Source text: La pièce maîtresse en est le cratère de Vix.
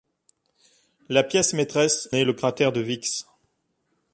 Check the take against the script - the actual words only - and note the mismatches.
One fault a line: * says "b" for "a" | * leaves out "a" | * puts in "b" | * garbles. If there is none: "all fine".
* leaves out "en"